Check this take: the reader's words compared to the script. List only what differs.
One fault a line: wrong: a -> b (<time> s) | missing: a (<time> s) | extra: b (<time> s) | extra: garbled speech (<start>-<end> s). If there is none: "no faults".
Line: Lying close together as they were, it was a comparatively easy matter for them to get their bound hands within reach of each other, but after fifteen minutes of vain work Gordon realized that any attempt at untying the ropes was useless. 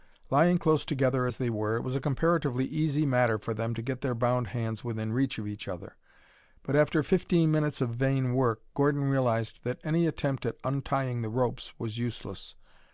no faults